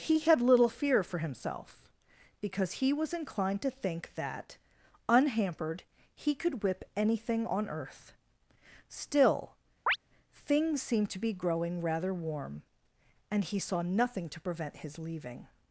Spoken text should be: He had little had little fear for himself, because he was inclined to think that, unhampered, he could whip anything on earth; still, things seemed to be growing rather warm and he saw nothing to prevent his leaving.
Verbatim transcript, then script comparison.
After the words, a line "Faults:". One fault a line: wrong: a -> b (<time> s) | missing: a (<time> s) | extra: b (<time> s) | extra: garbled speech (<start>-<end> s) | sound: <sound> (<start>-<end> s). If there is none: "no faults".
He had little fear for himself, because he was inclined to think that, unhampered, he could whip anything on earth; still, things seemed to be growing rather warm and he saw nothing to prevent his leaving.
Faults:
missing: had little (0.7 s)
sound: chirp (9.9-10.0 s)